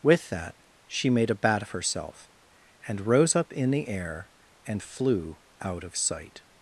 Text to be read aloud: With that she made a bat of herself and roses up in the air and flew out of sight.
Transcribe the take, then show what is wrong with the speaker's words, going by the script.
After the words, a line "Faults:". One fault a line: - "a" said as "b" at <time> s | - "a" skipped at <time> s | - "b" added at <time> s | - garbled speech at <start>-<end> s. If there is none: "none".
With that she made a bat of herself and rose up in the air and flew out of sight.
Faults:
- "roses" said as "rose" at 3.0 s